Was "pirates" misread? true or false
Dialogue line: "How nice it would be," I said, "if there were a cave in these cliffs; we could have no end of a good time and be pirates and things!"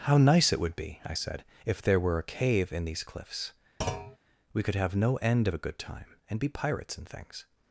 false